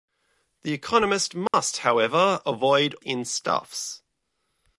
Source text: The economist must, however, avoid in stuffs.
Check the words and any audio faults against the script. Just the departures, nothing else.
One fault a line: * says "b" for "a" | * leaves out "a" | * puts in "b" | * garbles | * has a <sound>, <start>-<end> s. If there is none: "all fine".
* has a dropout, 1.5-1.5 s